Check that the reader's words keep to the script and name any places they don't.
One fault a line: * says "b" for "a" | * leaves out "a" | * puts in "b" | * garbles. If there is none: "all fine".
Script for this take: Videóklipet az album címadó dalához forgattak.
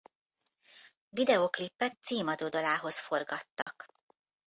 * leaves out "az album"